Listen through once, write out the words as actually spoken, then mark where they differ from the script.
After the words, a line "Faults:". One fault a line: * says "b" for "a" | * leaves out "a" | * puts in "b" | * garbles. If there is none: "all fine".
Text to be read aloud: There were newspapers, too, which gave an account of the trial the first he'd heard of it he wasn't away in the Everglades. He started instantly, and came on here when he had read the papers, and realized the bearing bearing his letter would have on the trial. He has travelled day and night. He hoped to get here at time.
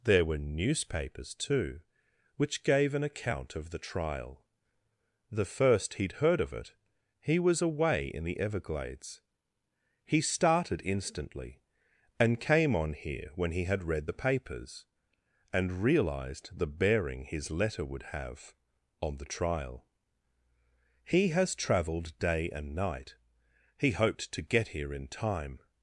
There were newspapers, too, which gave an account of the trial the first he'd heard of it he was away in the Everglades. He started instantly, and came on here when he had read the papers, and realized the bearing his letter would have on the trial. He has travelled day and night. He hoped to get here in time.
Faults:
* says "was" for "wasn't"
* leaves out "bearing"
* says "in" for "at"